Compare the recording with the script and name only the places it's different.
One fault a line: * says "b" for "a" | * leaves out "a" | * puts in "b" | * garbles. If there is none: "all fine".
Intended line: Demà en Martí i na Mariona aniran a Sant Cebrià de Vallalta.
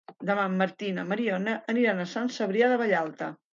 all fine